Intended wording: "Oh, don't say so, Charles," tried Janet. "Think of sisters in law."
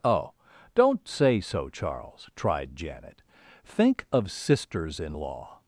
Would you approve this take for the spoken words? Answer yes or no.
yes